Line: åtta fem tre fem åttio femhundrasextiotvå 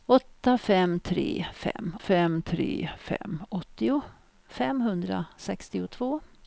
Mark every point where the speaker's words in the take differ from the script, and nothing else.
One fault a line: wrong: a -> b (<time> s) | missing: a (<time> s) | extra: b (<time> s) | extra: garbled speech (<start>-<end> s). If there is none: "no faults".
extra: fem tre fem (2.0 s)